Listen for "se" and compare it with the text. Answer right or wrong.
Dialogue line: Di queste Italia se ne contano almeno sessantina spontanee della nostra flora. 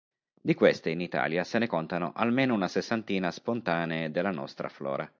right